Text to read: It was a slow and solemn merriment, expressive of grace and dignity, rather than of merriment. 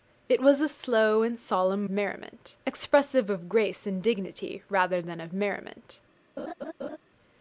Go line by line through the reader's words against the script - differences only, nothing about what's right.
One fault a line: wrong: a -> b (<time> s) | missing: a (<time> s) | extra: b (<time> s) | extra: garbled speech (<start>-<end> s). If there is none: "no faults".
no faults